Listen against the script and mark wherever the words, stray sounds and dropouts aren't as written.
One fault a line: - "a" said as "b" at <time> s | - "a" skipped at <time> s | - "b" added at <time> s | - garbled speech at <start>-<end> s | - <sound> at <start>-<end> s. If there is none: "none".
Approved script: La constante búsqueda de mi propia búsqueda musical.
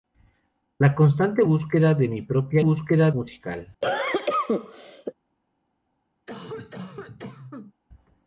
- cough at 3.8-5.1 s
- cough at 6.3-7.7 s